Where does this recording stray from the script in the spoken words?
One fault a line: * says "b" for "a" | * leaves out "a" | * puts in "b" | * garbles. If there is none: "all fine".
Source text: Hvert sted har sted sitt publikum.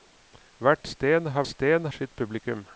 all fine